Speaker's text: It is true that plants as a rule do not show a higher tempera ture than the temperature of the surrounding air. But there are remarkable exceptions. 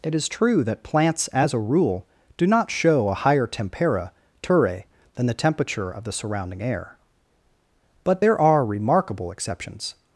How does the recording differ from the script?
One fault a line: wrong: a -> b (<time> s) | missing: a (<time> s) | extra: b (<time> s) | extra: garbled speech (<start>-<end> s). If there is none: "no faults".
no faults